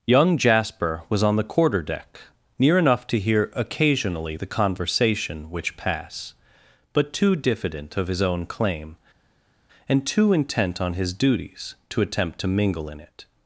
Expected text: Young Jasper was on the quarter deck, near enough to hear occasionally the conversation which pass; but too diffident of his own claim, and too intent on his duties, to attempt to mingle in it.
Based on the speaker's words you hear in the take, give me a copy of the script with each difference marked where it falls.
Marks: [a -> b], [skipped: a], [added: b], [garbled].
Young Jasper was on the quarter deck, near enough to hear occasionally the conversation which pass; but too diffident of his own claim, and too intent on his duties, to attempt to mingle in it.